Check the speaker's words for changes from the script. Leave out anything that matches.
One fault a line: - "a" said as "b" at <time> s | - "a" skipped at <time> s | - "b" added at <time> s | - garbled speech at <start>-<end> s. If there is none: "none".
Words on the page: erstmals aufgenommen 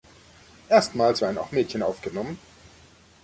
- "werden auch mädchen" added at 1.2 s